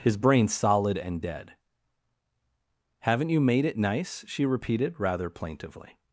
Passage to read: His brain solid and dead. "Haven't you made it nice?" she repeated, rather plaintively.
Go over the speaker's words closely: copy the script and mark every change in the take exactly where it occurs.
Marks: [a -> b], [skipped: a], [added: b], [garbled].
His brain solid and dead. "Haven't you made it nice?" she repeated, rather plaintively.